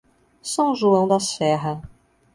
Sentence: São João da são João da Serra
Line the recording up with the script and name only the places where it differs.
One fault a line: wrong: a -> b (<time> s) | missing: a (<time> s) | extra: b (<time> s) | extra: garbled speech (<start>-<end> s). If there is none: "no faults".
missing: são João da (1.2 s)